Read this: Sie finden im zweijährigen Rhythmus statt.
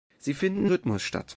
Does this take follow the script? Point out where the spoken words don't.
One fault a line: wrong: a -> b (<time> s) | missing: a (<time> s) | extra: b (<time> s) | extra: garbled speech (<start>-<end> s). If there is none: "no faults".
missing: im zweijährigen (0.7 s)